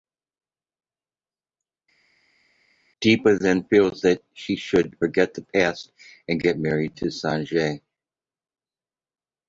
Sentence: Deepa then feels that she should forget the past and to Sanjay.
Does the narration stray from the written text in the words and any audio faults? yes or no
yes